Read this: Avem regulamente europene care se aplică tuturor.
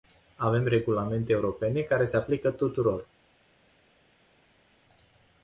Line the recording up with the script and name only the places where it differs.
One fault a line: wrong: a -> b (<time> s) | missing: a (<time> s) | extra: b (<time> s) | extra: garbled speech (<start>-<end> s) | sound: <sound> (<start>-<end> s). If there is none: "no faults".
no faults